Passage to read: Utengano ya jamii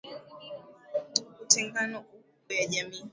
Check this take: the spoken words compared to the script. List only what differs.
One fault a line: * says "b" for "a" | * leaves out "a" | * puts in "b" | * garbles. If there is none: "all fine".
all fine